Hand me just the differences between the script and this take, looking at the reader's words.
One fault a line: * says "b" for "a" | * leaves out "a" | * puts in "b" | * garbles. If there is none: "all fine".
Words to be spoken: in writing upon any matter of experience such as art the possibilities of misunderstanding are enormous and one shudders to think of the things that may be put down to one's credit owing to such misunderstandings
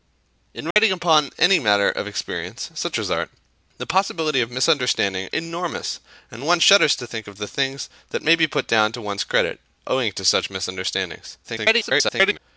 * leaves out "are"
* garbles